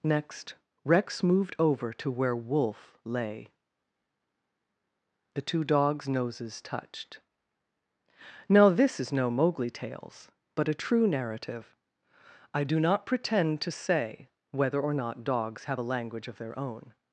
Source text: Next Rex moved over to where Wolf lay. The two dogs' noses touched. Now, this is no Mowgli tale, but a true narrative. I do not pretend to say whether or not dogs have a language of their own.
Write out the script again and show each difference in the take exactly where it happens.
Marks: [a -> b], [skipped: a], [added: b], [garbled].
Next Rex moved over to where Wolf lay. The two dogs' noses touched. Now, this is no Mowgli [tale, -> tales] but a true narrative. I do not pretend to say whether or not dogs have a language of their own.